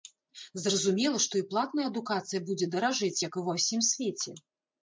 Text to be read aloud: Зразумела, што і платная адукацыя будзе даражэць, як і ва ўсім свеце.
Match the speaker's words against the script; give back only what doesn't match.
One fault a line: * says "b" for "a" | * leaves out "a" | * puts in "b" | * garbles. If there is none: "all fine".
all fine